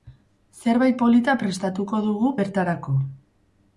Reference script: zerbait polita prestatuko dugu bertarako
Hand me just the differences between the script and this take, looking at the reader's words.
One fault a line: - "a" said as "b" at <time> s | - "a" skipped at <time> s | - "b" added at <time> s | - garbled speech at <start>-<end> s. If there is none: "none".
none